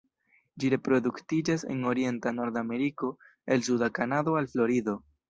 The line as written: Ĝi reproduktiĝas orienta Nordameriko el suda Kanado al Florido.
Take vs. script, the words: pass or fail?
fail